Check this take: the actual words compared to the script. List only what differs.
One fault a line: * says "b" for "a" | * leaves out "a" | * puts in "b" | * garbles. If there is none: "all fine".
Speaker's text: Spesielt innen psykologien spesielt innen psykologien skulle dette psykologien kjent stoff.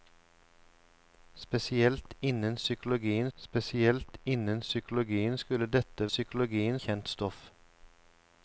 all fine